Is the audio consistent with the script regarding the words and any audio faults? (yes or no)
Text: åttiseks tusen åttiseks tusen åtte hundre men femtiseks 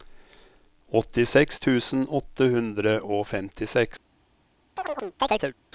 no